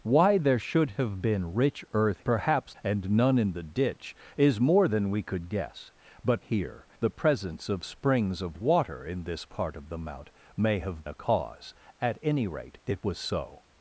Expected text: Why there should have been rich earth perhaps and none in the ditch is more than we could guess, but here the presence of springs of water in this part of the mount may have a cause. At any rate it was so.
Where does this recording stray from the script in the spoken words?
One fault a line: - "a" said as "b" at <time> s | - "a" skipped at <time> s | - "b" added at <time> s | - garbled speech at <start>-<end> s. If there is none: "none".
none